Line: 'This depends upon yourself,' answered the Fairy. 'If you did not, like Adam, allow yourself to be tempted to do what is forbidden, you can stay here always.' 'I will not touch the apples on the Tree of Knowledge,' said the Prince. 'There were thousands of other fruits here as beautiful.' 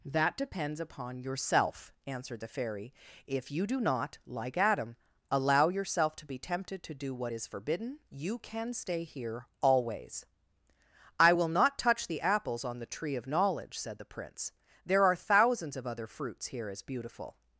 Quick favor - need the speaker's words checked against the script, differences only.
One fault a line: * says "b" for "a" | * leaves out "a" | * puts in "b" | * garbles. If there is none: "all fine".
* says "That" for "This"
* says "do" for "did"
* says "are" for "were"